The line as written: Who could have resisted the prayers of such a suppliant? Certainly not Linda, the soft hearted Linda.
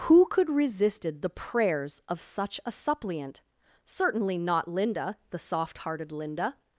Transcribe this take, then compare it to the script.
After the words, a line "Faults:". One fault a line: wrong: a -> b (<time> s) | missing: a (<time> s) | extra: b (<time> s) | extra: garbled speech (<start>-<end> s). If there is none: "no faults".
Who could resisted the prayers of such a suppliant? Certainly not Linda, the soft hearted Linda.
Faults:
missing: have (0.5 s)